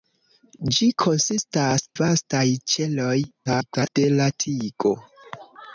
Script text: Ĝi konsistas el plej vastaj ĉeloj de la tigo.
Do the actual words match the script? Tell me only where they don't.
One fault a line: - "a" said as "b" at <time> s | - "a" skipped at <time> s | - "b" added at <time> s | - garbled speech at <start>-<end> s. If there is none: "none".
- "el plej" skipped at 1.9 s
- garbled speech at 3.5-4.0 s